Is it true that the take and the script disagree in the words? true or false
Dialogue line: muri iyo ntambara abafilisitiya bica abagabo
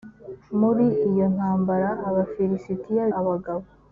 true